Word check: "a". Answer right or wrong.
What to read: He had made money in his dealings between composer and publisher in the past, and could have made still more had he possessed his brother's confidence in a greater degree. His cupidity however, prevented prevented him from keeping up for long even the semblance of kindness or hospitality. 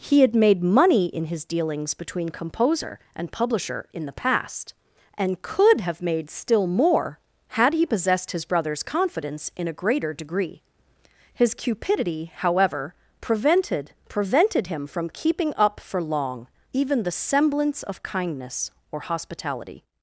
right